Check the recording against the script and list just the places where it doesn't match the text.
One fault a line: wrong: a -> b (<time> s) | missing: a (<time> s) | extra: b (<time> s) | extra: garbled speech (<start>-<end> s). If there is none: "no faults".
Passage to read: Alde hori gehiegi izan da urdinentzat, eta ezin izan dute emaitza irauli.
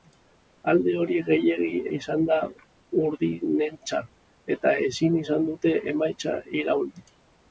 no faults